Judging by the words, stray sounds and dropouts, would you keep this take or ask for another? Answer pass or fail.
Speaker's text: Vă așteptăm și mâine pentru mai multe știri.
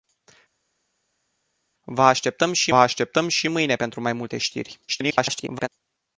fail